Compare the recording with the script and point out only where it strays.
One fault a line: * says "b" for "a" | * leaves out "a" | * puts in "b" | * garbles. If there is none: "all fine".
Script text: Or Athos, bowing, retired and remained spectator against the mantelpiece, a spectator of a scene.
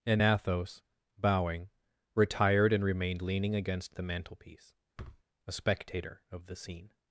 * says "And" for "Or"
* says "leaning" for "spectator"
* says "the" for "a"